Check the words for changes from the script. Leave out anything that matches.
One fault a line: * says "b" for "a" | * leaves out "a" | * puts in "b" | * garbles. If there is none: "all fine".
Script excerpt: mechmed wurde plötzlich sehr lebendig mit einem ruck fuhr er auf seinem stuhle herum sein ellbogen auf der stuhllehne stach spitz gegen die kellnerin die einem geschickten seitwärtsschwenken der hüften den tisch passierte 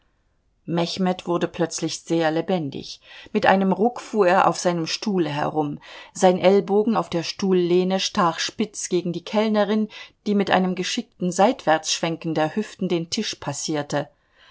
* puts in "mit"